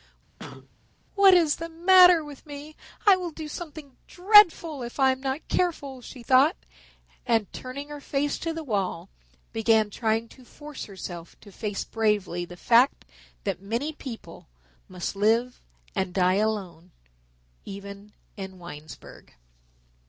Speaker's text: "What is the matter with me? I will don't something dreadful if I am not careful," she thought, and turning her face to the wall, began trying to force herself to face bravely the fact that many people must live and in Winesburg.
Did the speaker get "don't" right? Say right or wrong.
wrong